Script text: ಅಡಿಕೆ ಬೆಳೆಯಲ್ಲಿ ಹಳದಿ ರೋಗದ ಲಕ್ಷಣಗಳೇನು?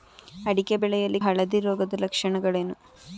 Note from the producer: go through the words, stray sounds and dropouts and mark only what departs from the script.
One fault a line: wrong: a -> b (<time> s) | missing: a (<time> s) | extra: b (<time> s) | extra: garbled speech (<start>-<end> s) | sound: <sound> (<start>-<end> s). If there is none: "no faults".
no faults